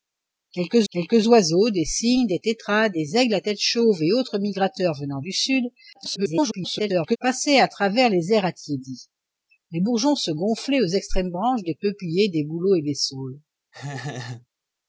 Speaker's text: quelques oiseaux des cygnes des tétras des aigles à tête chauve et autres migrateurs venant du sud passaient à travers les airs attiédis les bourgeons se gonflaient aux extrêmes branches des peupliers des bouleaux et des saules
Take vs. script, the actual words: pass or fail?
fail